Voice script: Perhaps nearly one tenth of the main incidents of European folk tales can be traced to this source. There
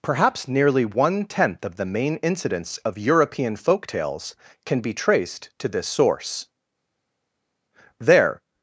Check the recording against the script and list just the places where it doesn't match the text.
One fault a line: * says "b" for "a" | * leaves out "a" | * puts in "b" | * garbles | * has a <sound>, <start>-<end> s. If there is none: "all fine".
all fine